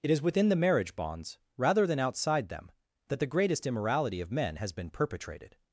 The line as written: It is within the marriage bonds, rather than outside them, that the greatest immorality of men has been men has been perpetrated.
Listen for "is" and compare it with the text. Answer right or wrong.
right